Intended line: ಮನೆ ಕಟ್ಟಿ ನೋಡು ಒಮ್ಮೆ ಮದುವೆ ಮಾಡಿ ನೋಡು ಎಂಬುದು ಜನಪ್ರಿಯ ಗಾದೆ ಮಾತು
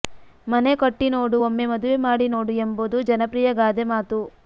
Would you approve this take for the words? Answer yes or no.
yes